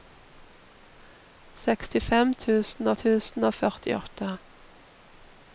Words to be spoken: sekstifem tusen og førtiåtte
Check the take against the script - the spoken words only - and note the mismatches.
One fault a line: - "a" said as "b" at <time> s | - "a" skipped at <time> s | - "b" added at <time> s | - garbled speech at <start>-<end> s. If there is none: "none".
- "tusen" added at 3.0 s